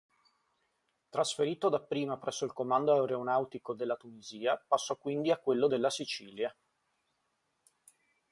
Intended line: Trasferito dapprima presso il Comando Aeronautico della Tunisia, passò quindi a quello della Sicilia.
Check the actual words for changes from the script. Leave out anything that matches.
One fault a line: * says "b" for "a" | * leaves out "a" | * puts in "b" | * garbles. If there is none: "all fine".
all fine